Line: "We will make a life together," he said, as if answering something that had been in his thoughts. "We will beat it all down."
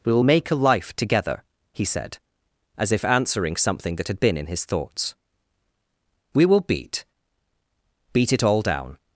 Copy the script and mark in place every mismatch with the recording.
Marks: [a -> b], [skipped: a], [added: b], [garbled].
"We will make a life together," he said, as if answering something that had been in his thoughts. "We will beat [added: beat] it all down."